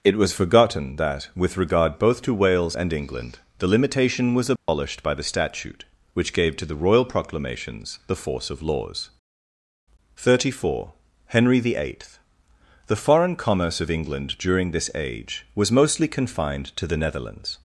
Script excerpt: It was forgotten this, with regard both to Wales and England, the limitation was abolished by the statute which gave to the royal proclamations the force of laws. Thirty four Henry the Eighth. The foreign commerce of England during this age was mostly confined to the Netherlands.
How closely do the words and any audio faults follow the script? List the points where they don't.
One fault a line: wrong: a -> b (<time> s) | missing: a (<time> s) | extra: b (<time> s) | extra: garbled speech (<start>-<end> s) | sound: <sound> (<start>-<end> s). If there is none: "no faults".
wrong: this -> that (0.9 s)
sound: dropout (4.6-4.7 s)